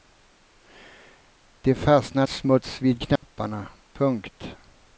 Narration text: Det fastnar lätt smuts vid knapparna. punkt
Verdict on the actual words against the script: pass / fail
fail